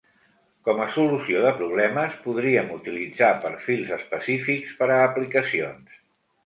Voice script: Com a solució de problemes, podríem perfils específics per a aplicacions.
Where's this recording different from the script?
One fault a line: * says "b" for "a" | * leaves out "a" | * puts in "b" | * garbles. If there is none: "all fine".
* puts in "utilitzar"